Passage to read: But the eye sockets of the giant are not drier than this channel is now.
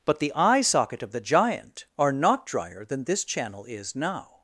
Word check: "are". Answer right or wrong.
right